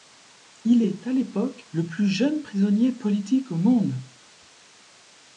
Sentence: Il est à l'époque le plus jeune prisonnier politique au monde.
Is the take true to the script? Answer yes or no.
yes